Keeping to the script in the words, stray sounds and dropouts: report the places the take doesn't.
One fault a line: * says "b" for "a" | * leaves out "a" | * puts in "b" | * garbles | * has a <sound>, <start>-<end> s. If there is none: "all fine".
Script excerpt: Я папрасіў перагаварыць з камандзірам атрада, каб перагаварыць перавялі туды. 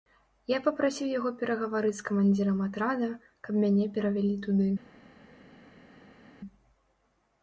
* puts in "яго"
* says "мяне" for "перагаварыць"